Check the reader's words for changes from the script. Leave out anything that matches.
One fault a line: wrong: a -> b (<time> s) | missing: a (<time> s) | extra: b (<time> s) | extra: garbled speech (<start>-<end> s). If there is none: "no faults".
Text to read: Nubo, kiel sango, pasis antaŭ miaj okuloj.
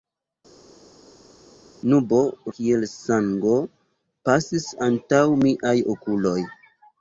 no faults